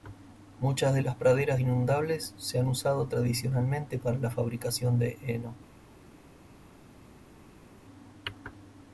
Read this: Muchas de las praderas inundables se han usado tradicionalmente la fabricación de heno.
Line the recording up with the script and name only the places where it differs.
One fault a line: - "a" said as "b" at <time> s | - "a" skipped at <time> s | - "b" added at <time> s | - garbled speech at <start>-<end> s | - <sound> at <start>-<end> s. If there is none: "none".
- "para" added at 4.0 s